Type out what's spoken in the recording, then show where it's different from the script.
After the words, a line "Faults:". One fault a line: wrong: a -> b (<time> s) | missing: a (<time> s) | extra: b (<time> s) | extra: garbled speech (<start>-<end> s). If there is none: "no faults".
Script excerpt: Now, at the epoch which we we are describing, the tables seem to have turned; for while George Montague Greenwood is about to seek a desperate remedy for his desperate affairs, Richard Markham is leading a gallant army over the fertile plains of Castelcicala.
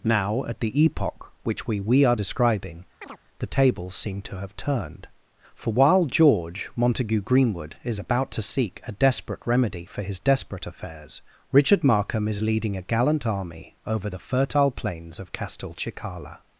Now, at the epoch which we we are describing, the tables seem to have turned; for while George Montague Greenwood is about to seek a desperate remedy for his desperate affairs, Richard Markham is leading a gallant army over the fertile plains of Castelcicala.
Faults:
no faults